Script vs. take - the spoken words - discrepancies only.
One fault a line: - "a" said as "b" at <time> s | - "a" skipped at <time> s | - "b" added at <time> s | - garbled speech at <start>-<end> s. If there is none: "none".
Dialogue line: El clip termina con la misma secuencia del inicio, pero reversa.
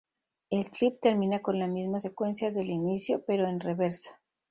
- "en" added at 3.5 s